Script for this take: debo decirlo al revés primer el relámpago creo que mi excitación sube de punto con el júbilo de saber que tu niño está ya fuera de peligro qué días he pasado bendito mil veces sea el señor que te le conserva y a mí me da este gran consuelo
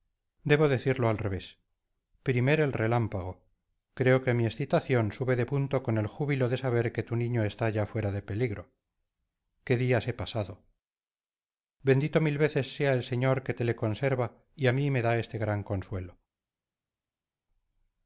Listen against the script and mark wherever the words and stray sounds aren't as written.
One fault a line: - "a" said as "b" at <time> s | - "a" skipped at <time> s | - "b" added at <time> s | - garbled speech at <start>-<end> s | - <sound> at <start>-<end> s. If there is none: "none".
none